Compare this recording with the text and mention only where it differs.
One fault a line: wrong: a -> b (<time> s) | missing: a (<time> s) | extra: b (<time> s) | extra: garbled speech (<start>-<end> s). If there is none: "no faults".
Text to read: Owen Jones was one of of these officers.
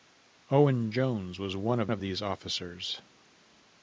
no faults